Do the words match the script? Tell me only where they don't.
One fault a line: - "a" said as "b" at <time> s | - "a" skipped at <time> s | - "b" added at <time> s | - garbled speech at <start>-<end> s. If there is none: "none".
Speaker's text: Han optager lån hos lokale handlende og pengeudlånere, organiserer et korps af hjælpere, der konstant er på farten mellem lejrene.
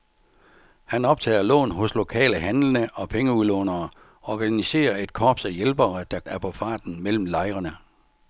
- "konstant" skipped at 6.2 s